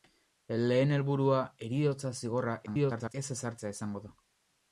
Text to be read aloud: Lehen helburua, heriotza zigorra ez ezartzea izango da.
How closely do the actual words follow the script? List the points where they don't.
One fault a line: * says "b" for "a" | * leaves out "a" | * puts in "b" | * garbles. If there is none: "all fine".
* garbles